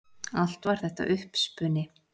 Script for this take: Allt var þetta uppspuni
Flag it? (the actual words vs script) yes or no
no